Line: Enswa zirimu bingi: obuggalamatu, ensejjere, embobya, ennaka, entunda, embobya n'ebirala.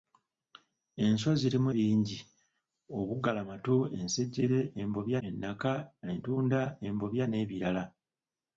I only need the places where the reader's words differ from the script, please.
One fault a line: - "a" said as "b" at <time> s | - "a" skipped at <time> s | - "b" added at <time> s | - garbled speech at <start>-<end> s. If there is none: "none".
none